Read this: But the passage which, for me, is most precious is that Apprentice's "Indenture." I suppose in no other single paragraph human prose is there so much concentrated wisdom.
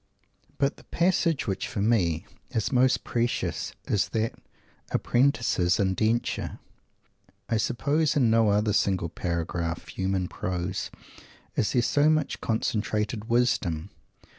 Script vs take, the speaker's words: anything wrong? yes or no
no